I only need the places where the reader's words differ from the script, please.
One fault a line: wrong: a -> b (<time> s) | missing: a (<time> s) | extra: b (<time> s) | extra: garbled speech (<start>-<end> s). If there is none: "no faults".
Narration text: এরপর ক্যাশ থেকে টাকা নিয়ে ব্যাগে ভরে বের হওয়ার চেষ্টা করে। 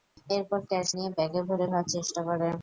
missing: থেকে টাকা (0.9 s)
missing: বের (1.7 s)